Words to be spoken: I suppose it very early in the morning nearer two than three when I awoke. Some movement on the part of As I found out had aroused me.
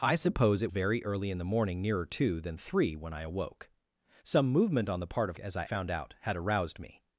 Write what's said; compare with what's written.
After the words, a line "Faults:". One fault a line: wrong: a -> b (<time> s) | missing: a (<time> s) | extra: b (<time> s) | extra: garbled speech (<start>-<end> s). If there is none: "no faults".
I suppose it very early in the morning nearer two than three when I awoke. Some movement on the part of As I found out had aroused me.
Faults:
no faults